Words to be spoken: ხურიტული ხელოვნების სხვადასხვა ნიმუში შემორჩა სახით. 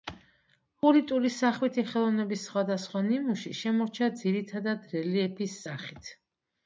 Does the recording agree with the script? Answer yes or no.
no